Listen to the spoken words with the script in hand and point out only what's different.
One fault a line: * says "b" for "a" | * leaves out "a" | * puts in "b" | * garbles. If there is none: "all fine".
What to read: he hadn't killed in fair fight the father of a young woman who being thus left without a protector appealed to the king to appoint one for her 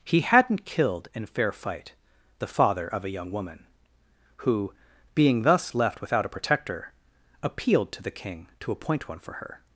all fine